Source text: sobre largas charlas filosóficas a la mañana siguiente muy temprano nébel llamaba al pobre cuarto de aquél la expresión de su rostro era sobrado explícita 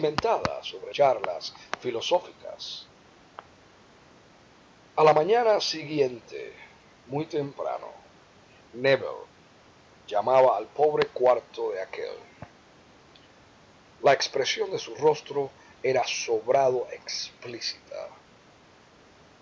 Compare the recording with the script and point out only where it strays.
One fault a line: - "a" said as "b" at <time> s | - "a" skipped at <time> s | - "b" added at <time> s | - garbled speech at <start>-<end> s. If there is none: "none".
- "largas" skipped at 0.9 s